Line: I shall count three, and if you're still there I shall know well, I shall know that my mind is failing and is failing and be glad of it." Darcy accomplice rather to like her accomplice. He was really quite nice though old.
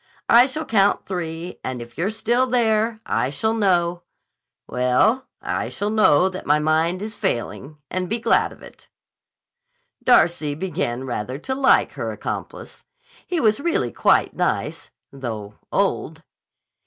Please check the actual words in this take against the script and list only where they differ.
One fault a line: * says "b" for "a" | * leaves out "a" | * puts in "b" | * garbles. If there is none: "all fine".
* leaves out "is failing and"
* says "began" for "accomplice"